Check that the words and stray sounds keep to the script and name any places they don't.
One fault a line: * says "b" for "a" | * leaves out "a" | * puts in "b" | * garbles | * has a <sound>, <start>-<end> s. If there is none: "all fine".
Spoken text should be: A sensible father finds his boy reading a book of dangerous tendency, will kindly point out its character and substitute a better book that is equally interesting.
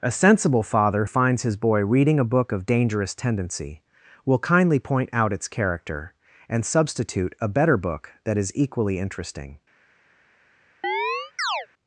* has a chirp, 10.8-11.7 s